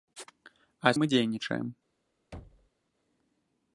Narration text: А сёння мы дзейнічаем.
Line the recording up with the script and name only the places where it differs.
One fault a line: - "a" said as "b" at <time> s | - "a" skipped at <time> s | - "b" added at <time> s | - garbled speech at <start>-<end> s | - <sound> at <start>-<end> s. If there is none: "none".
- "сёння" skipped at 0.9 s
- thud at 2.3-2.7 s